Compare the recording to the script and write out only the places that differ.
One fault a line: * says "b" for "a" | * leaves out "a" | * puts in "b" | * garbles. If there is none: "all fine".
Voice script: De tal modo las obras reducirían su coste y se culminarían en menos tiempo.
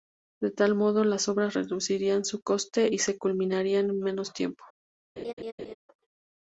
all fine